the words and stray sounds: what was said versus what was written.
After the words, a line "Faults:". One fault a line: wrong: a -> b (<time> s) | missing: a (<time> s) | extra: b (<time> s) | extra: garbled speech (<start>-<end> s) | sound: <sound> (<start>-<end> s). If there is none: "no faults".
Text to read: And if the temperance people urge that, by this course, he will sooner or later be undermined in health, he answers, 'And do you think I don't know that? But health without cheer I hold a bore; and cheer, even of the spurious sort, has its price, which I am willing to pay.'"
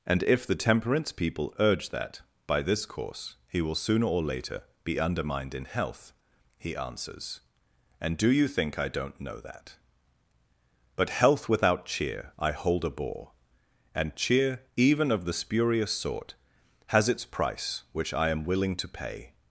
And if the temperance people urge that, by this course, he will sooner or later be undermined in health, he answers, 'And do you think I don't know that? But health without cheer I hold a bore; and cheer, even of the spurious sort, has its price, which I am willing to pay.'"
Faults:
no faults